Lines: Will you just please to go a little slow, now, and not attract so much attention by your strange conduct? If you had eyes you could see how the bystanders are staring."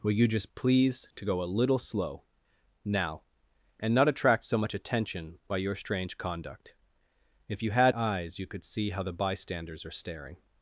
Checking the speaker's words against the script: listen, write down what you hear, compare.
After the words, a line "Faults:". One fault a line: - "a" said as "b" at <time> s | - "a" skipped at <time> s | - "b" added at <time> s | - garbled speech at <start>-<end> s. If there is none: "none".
Will you just please to go a little slow, now, and not attract so much attention by your strange conduct? If you had eyes you could see how the bystanders are staring."
Faults:
none